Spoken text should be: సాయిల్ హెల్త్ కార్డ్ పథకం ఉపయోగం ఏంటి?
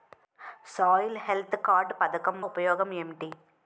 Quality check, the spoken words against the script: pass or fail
pass